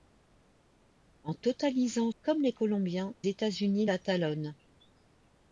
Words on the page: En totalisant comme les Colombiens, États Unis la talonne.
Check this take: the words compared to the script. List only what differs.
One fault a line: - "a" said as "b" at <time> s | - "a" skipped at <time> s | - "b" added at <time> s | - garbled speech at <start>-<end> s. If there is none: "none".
none